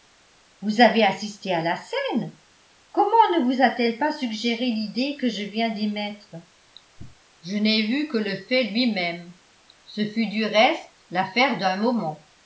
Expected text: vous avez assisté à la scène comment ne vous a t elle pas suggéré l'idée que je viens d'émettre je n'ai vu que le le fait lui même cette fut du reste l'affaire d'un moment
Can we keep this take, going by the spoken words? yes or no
no